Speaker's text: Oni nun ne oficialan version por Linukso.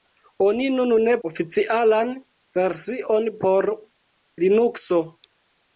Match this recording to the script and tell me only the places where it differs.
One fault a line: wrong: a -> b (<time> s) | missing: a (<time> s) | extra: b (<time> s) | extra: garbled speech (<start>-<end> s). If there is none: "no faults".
no faults